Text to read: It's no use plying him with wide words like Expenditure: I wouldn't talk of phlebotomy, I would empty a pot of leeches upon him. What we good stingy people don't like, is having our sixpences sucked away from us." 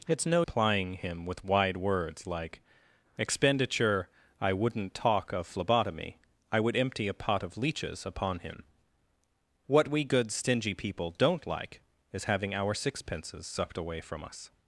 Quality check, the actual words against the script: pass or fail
fail